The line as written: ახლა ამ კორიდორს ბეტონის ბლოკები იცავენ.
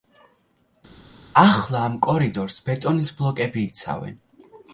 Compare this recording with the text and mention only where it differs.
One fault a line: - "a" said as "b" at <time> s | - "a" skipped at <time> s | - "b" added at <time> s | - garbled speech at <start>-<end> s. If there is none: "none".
none